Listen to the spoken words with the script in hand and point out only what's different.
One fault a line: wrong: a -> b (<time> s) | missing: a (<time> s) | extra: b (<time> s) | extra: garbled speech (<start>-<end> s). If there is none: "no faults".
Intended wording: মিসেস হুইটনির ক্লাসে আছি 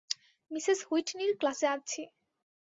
no faults